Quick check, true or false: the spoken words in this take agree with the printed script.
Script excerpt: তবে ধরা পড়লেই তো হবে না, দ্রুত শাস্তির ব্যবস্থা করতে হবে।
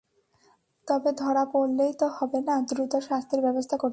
true